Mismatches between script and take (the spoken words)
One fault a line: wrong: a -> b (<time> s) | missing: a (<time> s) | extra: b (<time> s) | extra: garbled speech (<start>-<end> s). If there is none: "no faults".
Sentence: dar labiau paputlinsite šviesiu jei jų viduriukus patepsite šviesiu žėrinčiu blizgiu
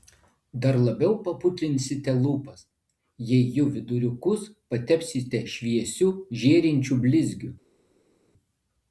wrong: šviesiu -> lūpas (2.2 s)